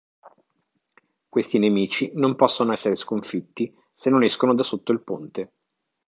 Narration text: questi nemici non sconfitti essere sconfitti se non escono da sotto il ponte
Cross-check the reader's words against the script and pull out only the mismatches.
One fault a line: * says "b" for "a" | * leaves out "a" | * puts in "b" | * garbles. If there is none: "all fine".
* says "possono" for "sconfitti"